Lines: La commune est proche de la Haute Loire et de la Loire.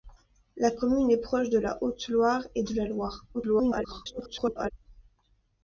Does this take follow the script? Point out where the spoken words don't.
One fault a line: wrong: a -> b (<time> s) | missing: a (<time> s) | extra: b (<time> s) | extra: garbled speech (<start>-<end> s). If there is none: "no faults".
extra: garbled speech (3.3-4.7 s)